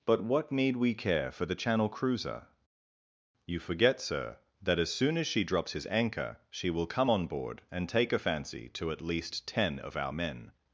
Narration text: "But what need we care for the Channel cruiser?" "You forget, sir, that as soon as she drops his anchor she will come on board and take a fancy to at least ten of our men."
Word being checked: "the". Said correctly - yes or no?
yes